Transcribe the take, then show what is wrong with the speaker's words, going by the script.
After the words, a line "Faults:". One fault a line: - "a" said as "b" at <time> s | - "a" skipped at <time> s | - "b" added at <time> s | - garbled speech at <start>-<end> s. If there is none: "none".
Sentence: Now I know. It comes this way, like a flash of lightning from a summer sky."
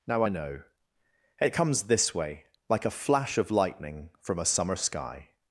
Now I know. It comes this way, like a flash of lightning from a summer sky."
Faults:
none